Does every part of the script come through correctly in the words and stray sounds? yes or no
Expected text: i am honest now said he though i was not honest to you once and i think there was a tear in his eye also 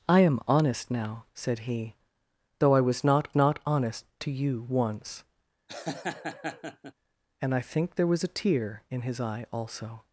no